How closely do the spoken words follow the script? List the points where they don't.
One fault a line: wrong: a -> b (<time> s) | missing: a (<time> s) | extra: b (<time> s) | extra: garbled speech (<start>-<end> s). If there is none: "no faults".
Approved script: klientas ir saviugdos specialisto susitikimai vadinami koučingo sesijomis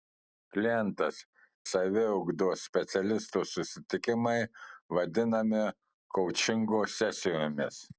missing: ir (1.2 s)